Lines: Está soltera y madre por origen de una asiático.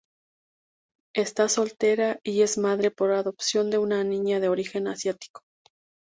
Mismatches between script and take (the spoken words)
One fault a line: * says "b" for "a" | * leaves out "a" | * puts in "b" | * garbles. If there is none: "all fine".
* puts in "es"
* says "adopción" for "origen"
* puts in "niña de origen"